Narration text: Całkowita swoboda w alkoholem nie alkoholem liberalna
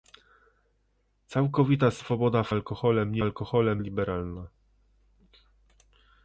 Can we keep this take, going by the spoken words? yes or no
yes